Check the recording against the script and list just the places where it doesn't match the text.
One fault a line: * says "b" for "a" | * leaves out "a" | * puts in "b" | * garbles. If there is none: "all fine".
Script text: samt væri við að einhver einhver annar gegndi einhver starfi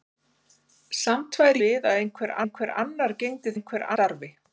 all fine